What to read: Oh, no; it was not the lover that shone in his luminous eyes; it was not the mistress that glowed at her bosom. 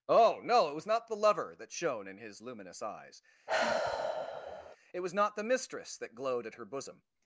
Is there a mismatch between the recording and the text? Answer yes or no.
no